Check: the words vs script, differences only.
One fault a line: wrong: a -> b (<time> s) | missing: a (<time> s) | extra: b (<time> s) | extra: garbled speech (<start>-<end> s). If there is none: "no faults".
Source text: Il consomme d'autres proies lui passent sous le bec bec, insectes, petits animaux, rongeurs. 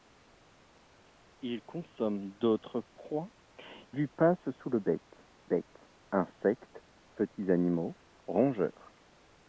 no faults